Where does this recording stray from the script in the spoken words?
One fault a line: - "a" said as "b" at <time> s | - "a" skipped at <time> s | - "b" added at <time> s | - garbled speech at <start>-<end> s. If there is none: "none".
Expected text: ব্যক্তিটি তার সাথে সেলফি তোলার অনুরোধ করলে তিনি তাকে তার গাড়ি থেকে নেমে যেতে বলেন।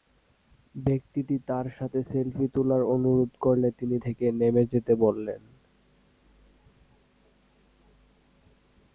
- "তাকে তার গাড়ি" skipped at 4.0 s